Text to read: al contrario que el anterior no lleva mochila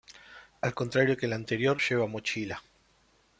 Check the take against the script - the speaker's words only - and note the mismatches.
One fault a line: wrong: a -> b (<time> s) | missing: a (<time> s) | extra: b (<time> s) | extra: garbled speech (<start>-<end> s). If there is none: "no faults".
missing: no (1.8 s)